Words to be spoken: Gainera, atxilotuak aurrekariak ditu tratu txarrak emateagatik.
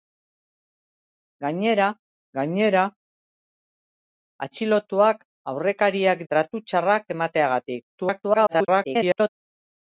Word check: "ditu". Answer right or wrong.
wrong